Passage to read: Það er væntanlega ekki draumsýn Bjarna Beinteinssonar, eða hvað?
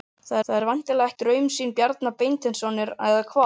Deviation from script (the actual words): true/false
true